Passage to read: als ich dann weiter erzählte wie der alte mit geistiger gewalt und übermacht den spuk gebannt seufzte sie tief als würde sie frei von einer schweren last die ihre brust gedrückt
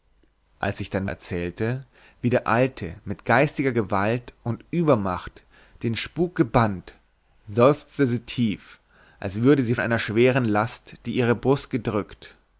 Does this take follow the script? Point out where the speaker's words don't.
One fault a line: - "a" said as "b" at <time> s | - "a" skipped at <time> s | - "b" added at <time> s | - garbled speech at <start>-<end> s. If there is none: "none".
- "weiter" skipped at 1.1 s
- "frei von" skipped at 9.8 s